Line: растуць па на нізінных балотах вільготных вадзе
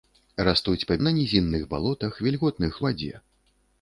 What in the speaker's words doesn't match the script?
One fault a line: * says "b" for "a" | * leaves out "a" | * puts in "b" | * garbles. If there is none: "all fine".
all fine